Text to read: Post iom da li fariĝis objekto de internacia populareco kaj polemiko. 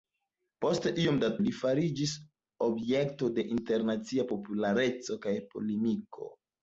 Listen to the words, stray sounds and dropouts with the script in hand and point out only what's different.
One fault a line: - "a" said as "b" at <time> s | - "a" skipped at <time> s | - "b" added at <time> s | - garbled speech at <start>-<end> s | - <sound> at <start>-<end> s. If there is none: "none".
none